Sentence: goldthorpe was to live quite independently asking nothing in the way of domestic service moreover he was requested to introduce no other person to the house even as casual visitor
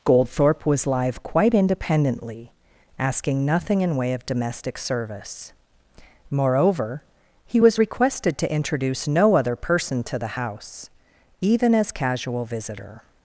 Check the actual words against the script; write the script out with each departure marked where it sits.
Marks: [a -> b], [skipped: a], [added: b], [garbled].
goldthorpe was [skipped: to] live quite independently asking nothing in [skipped: the] way of domestic service moreover he was requested to introduce no other person to the house even as casual visitor